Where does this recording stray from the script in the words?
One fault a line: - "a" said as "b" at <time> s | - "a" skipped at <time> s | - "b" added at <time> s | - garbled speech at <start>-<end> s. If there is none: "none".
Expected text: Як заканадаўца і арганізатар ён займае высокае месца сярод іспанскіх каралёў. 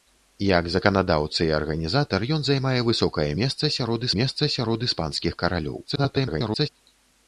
- "месца сярод" added at 4.2 s
- garbled speech at 5.8-6.7 s